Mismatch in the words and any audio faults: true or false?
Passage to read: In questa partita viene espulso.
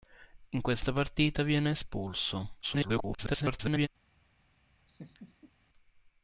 true